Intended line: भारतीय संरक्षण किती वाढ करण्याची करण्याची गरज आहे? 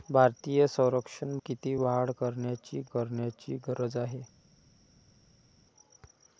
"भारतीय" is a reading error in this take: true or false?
false